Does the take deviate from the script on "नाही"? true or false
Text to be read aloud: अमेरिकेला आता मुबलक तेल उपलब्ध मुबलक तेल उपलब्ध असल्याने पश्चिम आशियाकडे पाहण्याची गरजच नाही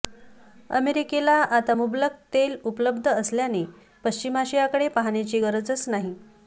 false